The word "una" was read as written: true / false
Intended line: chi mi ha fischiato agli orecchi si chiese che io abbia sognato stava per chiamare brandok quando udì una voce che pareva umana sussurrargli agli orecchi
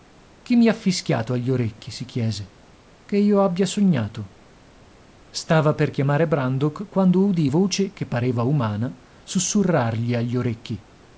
false